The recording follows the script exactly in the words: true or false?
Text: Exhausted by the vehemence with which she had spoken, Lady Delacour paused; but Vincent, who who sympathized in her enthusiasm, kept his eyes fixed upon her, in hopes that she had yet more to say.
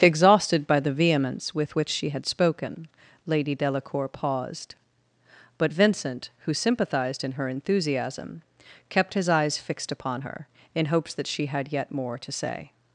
false